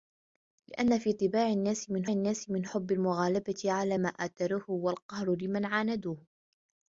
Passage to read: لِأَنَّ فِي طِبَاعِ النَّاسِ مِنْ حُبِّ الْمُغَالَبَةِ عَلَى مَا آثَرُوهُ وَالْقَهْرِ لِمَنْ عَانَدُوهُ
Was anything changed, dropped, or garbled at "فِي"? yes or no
no